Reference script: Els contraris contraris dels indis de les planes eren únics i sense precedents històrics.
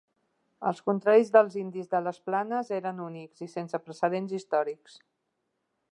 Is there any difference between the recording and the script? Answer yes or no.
yes